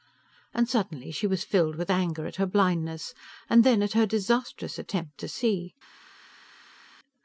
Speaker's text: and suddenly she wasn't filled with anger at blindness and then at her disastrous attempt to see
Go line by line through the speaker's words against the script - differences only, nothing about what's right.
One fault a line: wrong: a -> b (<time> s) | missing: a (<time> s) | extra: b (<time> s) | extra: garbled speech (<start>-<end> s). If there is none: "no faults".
wrong: wasn't -> was (1.3 s)
extra: her (2.4 s)